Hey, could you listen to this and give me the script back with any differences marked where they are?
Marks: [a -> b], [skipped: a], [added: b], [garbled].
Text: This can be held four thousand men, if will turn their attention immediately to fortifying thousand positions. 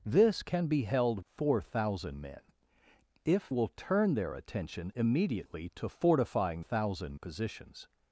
This can be held four thousand men, if will turn their attention immediately to fortifying thousand positions.